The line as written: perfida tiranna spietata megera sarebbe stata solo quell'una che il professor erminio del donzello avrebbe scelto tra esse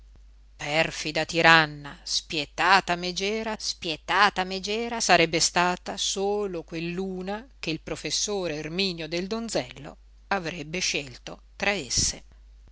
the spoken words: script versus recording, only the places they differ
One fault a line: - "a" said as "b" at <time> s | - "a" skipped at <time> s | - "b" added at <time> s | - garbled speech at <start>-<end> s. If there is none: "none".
- "spietata megera" added at 3.5 s